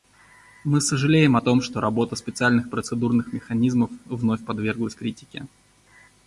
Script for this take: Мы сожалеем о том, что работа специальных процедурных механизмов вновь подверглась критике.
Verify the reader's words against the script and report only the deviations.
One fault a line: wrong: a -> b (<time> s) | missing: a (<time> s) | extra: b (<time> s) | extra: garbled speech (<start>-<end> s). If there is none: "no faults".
no faults